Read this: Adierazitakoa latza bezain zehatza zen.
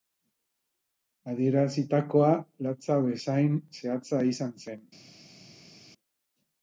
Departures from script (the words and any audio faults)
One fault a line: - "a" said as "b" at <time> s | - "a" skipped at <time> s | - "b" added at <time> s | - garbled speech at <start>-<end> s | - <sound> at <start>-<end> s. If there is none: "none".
- "izan" added at 4.3 s